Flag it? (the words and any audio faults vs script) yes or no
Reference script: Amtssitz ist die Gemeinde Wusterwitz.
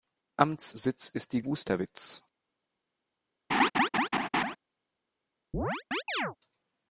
yes